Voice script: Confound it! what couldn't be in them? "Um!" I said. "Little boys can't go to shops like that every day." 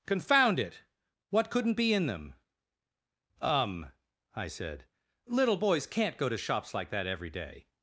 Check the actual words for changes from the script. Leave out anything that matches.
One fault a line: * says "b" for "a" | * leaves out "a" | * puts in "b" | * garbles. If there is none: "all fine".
all fine